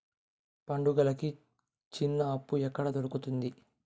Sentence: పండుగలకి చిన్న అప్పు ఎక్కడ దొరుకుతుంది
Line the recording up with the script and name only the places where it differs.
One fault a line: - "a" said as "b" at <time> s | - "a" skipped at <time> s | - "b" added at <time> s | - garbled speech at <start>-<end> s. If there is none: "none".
none